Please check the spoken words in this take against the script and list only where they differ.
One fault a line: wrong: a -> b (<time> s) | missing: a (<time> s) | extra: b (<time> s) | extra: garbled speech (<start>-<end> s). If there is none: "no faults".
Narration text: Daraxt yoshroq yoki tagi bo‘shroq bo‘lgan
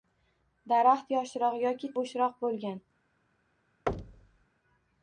missing: tagi (1.9 s)